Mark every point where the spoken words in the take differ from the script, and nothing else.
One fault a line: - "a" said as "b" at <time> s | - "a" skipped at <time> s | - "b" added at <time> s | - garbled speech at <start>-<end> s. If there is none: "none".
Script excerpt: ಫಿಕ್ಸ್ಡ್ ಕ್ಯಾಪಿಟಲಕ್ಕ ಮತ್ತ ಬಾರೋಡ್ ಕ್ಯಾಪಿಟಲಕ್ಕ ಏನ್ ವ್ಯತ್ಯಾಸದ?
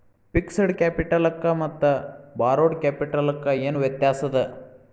none